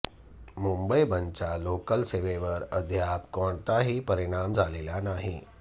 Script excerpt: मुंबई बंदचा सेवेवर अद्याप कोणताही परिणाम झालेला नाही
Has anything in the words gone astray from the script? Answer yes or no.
yes